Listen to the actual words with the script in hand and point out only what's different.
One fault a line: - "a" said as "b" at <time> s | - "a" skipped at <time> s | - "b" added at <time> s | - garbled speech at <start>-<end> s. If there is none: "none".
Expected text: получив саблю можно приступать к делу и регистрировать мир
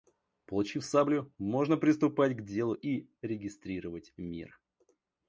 none